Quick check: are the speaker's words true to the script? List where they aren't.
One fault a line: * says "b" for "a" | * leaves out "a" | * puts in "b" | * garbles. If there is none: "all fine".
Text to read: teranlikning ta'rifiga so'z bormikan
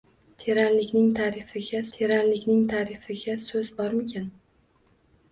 * puts in "teranlikning ta'rifiga"